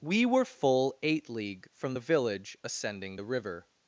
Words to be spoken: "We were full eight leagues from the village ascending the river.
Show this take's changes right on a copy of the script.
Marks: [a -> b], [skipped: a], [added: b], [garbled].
"We were full eight [leagues -> league] from the village ascending the river.